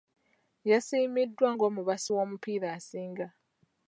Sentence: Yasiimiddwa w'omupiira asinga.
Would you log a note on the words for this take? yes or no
yes